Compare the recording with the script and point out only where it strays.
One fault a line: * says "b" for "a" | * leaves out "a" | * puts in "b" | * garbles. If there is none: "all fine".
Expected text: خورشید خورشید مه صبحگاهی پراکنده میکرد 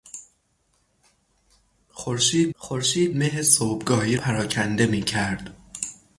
all fine